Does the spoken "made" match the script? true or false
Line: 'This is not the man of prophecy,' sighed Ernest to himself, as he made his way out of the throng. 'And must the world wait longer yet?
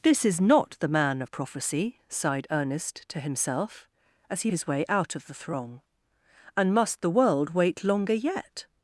false